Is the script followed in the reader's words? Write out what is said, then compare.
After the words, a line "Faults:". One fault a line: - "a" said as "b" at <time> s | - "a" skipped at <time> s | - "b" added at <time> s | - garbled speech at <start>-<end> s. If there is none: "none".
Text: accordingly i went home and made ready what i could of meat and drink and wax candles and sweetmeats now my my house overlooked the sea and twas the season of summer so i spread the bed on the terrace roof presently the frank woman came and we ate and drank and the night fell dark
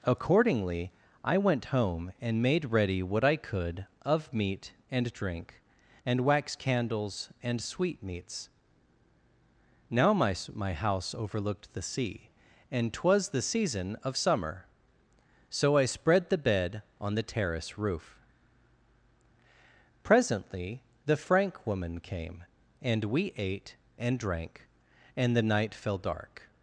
accordingly i went home and made ready what i could of meat and drink and wax candles and sweetmeats now my my house overlooked the sea and twas the season of summer so i spread the bed on the terrace roof presently the frank woman came and we ate and drank and the night fell dark
Faults:
none